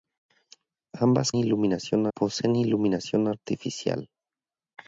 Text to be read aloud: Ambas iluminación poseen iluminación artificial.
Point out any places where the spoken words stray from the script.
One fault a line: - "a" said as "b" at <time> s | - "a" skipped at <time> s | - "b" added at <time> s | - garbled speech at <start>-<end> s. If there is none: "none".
none